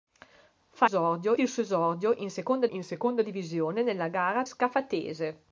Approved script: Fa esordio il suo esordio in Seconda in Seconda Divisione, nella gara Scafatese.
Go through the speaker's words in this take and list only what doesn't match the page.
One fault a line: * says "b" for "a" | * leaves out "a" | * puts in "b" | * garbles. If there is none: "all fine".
all fine